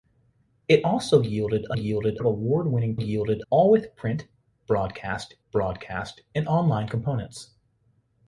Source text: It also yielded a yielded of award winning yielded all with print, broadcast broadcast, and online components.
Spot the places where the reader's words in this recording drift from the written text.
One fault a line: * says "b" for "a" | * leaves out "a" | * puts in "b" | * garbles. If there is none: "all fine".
all fine